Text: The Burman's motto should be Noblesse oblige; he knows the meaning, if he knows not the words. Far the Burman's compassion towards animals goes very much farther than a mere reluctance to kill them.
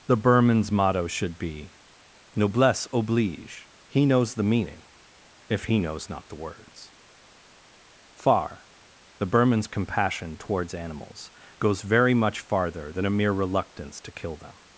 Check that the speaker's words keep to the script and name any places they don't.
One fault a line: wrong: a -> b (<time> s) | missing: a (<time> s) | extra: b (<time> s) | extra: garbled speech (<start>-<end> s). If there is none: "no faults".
no faults